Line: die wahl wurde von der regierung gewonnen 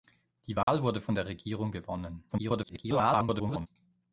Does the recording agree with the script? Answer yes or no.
no